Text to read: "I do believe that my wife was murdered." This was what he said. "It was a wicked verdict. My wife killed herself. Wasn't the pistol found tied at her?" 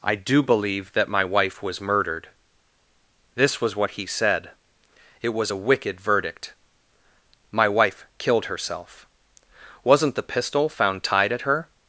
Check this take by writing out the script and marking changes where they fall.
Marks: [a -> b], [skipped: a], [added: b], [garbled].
"I do believe that my wife was murdered." This was what he said. "It was a wicked verdict. My wife killed herself. Wasn't the pistol found tied at her?"